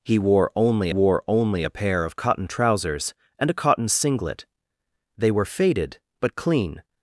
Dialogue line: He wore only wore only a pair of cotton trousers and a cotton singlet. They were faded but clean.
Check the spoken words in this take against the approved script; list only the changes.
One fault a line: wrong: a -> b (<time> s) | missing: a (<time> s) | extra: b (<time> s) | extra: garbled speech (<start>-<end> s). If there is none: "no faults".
no faults